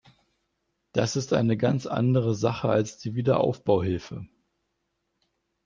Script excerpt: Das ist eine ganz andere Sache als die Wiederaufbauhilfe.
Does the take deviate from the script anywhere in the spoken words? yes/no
no